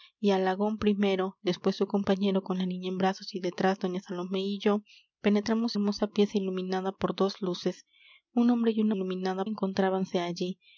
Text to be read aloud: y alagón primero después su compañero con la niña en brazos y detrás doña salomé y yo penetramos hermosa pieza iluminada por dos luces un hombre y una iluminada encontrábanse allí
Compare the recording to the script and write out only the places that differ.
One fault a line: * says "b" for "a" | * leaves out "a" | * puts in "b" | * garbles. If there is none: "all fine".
all fine